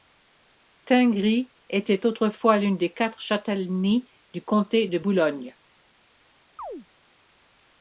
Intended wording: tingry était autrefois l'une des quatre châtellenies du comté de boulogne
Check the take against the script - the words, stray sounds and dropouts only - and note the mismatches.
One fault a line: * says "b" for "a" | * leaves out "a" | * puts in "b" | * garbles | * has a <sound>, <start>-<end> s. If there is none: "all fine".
* has a chirp, 6.6-6.9 s